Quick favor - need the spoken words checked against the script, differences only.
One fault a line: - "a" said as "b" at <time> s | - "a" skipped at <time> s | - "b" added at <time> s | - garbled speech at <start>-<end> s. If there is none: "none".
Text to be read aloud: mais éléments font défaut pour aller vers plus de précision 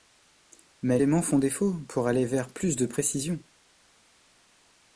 none